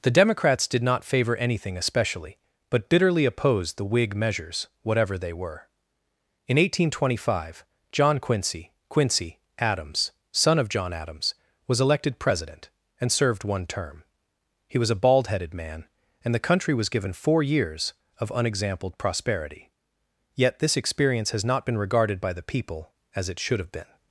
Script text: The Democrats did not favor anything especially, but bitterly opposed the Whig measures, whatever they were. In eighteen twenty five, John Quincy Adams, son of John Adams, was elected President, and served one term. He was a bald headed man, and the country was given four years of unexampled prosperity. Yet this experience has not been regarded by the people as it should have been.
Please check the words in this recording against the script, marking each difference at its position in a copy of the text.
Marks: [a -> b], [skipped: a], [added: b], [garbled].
The Democrats did not favor anything especially, but bitterly opposed the Whig measures, whatever they were. In eighteen twenty five, John Quincy [added: Quincy] Adams, son of John Adams, was elected President, and served one term. He was a bald headed man, and the country was given four years of unexampled prosperity. Yet this experience has not been regarded by the people as it should have been.